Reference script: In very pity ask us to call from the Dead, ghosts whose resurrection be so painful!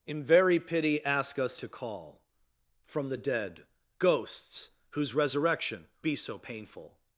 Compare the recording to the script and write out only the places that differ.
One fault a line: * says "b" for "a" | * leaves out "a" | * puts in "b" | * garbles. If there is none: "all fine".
all fine